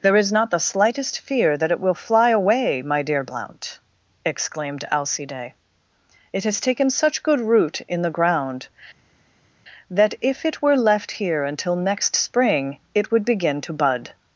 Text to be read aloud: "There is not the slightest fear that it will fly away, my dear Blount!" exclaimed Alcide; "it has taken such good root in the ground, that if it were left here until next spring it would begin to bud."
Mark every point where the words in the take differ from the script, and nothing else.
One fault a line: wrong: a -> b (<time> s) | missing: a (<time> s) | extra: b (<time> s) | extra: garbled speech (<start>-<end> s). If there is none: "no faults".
no faults